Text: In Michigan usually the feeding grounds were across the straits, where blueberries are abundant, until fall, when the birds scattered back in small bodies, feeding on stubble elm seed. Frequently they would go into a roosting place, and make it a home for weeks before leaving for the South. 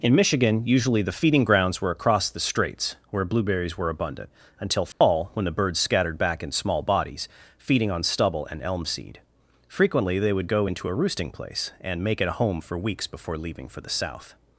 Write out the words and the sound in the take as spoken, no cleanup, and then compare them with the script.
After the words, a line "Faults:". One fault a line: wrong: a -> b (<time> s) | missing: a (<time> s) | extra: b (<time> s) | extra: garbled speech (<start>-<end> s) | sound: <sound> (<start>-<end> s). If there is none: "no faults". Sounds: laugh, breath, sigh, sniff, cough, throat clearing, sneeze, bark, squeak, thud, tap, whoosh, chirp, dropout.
In Michigan usually the feeding grounds were across the straits, where blueberries were abundant, until fall, when the birds scattered back in small bodies, feeding on stubble and elm seed. Frequently they would go into a roosting place, and make it a home for weeks before leaving for the South.
Faults:
wrong: are -> were (3.8 s)
sound: dropout (4.9-5.0 s)
extra: and (8.5 s)